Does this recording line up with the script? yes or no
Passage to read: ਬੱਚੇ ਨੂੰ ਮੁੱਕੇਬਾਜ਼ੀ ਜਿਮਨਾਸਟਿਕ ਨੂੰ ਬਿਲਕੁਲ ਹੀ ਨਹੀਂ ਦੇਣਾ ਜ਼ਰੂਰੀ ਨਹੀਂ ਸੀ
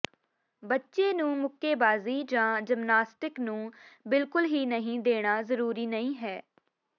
no